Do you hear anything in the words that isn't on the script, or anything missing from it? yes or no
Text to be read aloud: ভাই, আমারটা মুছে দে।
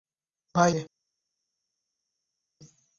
yes